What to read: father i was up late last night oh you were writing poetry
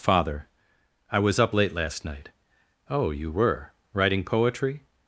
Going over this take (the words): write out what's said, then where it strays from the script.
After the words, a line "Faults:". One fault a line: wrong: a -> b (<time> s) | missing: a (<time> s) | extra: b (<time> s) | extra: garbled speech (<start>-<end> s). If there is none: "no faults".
father i was up late last night oh you were writing poetry
Faults:
no faults